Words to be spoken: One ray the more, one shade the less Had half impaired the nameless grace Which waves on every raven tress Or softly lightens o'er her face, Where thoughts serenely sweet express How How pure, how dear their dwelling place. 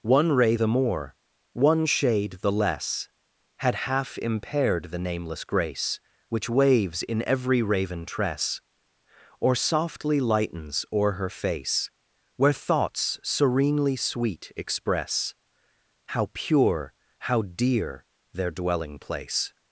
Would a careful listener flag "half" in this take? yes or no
no